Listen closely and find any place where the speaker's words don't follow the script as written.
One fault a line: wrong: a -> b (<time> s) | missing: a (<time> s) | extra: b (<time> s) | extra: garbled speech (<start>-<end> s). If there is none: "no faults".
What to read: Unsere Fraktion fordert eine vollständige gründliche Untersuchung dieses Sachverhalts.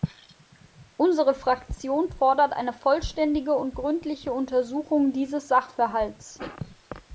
extra: und (3.5 s)